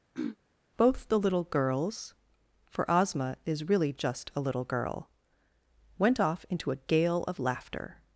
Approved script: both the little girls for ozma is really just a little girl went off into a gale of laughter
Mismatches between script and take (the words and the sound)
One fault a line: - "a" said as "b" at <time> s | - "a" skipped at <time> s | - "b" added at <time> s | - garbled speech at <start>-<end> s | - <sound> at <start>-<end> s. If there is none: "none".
- throat clearing at 0.1-0.4 s